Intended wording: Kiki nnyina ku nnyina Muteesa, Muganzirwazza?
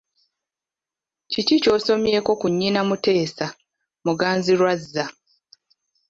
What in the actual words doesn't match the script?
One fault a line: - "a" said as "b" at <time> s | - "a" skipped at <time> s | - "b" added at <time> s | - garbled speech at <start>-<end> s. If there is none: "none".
- "nnyina" said as "ky'osomyeko" at 1.6 s